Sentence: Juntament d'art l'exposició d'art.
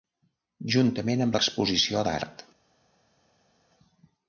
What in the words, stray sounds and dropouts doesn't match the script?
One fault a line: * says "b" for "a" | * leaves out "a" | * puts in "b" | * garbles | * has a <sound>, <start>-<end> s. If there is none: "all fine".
* says "amb" for "d'art"